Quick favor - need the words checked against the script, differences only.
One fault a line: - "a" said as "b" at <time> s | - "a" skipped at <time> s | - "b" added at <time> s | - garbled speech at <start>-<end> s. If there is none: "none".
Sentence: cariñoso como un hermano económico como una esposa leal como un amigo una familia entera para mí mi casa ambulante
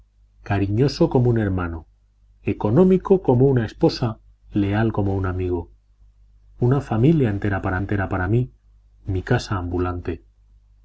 - "entera para" added at 7.8 s